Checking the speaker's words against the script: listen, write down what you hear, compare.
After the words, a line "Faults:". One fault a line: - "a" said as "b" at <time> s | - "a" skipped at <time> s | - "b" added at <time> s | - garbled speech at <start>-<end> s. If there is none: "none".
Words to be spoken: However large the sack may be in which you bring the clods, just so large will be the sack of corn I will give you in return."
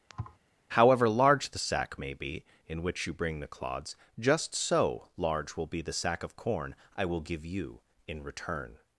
However large the sack may be in which you bring the clods, just so large will be the sack of corn I will give you in return."
Faults:
none